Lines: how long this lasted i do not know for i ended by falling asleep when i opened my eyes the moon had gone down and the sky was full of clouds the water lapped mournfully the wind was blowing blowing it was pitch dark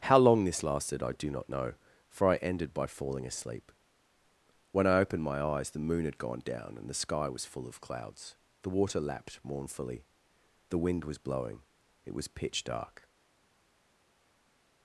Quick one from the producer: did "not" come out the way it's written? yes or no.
yes